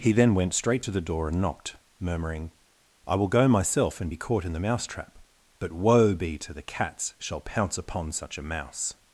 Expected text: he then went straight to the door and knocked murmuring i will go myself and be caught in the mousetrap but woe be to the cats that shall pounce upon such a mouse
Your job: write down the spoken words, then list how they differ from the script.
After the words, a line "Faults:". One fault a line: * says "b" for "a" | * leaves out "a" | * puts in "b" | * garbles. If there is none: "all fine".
he then went straight to the door and knocked murmuring i will go myself and be caught in the mousetrap but woe be to the cats shall pounce upon such a mouse
Faults:
* leaves out "that"